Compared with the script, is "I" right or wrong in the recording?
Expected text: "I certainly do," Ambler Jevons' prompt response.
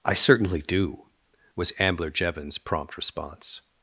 right